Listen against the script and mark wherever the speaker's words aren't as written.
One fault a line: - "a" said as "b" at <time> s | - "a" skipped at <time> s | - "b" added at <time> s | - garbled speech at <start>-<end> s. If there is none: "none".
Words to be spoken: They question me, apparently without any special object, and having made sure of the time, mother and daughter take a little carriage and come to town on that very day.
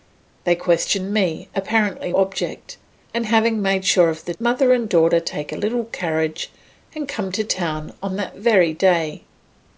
- "without any special" skipped at 2.1 s
- "time" skipped at 4.3 s